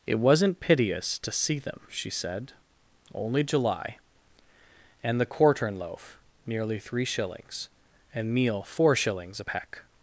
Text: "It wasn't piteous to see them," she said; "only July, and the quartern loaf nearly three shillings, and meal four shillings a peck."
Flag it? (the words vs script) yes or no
no